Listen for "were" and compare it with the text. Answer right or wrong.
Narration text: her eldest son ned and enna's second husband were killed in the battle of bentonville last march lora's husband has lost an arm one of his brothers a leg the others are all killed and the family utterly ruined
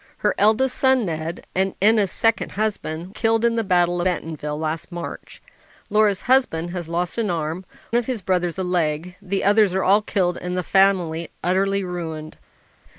wrong